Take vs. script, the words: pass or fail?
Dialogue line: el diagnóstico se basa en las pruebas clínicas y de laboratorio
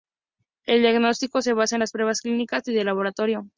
pass